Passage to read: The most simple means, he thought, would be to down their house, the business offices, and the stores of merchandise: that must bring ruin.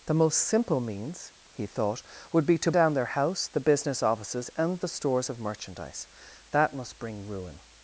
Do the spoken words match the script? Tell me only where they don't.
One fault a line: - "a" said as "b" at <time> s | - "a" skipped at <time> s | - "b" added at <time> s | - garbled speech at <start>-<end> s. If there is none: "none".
none